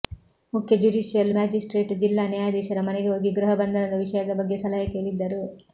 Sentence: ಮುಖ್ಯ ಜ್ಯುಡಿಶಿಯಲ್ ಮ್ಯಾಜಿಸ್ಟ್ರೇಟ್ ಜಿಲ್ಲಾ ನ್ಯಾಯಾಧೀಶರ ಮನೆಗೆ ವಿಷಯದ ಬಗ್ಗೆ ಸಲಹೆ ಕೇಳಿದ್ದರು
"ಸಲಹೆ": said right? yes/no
yes